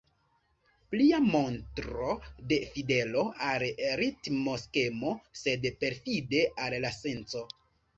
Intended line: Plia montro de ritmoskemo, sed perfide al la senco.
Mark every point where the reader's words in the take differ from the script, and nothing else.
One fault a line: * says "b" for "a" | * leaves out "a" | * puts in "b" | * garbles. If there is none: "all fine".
* puts in "fidelo al"